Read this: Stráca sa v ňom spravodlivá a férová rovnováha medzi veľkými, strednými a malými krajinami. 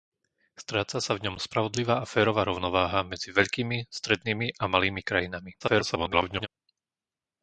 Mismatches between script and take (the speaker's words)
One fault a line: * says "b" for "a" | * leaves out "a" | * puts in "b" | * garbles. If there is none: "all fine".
* garbles